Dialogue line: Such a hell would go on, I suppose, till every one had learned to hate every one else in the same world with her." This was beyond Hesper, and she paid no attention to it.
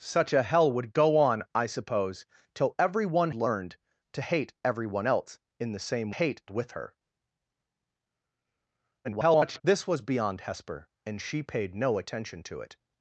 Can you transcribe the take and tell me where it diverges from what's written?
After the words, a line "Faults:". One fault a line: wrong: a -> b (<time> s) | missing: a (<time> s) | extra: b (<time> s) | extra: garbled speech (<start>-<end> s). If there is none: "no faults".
Such a hell would go on, I suppose, till every one learned to hate every one else in the same hate with her." [garbled] This was beyond Hesper, and she paid no attention to it.
Faults:
missing: had (3.3 s)
wrong: world -> hate (6.1 s)
extra: garbled speech (9.0-9.6 s)